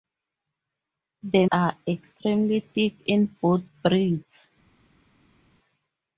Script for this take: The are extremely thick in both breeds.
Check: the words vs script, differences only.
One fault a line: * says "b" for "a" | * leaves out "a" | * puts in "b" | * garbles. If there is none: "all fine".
all fine